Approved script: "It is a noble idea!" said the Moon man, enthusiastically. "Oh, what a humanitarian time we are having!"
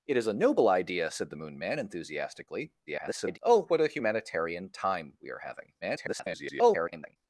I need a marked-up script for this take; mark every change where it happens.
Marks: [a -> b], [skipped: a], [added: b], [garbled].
"It is a noble idea!" said the Moon man, enthusiastically. [garbled] "Oh, what a humanitarian time we are having!" [garbled]